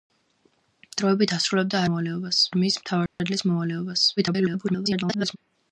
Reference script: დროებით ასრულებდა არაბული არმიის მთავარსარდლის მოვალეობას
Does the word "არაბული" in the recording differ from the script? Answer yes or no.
yes